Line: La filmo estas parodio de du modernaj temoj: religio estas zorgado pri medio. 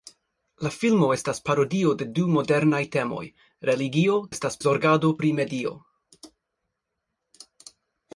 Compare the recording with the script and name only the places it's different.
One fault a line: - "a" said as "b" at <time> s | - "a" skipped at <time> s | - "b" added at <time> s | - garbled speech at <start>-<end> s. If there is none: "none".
none